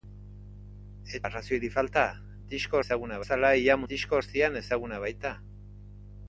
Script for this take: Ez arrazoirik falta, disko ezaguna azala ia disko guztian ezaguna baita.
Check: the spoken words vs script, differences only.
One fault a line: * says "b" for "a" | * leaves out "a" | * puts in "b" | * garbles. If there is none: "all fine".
all fine